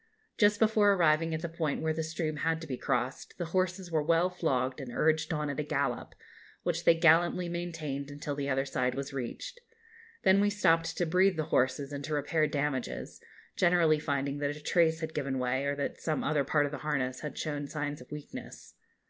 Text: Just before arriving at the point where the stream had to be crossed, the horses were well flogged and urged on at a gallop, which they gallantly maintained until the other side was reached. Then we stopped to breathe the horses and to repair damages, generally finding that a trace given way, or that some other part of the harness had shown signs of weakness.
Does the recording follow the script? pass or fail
fail